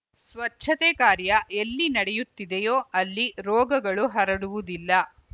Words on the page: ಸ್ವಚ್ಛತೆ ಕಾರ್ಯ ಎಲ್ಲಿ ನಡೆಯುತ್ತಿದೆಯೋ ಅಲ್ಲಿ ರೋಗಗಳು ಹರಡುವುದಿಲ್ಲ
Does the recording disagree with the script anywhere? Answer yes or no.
no